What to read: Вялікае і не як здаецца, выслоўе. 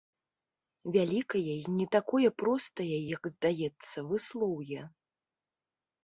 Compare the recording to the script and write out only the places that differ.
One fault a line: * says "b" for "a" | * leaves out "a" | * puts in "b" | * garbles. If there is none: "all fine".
* puts in "такое простае"